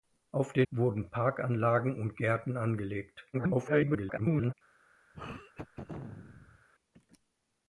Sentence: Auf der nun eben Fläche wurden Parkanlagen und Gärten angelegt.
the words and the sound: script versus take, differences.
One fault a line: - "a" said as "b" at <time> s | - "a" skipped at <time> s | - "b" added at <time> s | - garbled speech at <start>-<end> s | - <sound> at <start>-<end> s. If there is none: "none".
- "nun eben Fläche" skipped at 0.7 s
- garbled speech at 3.3-4.5 s
- throat clearing at 5.1-6.7 s